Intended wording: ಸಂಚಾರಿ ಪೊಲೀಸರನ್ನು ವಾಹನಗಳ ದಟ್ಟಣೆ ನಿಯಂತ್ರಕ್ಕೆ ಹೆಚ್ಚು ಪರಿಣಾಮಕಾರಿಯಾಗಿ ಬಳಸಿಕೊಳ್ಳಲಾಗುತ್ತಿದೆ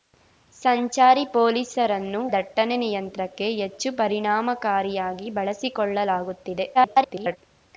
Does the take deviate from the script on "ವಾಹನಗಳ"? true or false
true